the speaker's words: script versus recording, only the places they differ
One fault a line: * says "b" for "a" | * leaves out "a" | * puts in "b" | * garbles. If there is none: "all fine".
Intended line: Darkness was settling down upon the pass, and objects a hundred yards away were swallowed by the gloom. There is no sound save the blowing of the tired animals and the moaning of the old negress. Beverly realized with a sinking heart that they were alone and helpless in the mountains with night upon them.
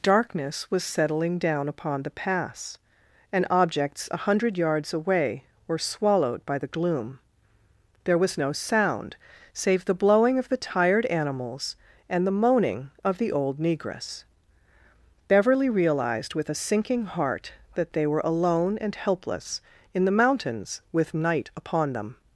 * says "was" for "is"